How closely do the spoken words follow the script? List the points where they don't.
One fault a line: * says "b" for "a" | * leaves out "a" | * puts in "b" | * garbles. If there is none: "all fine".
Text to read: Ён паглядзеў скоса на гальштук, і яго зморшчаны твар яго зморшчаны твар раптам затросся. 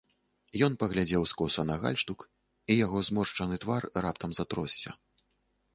* leaves out "яго зморшчаны твар"